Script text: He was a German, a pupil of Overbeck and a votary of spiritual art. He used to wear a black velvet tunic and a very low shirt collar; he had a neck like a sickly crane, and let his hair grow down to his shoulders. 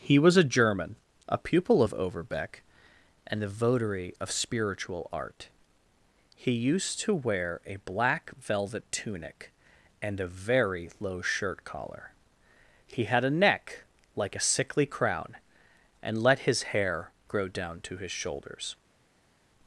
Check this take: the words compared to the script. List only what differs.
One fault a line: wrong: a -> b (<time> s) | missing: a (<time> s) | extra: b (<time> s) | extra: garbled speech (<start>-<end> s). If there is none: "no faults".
wrong: crane -> crown (14.9 s)